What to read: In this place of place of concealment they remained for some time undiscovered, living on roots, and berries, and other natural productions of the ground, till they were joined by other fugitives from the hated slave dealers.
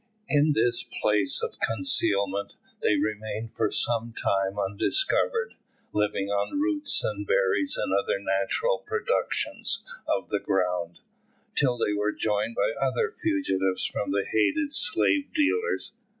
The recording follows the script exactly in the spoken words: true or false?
false